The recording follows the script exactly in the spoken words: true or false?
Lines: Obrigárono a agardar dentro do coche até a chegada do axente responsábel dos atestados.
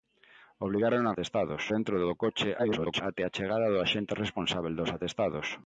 false